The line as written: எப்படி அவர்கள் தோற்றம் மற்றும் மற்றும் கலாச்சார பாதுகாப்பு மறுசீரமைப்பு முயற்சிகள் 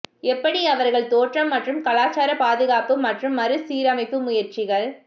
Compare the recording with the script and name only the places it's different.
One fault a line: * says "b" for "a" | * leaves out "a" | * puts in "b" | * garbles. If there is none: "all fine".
* leaves out "மற்றும்"
* puts in "மற்றும்"